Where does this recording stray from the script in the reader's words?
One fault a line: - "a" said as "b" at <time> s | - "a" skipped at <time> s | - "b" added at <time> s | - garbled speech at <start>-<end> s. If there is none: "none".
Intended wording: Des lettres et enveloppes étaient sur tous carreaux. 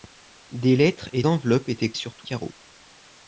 none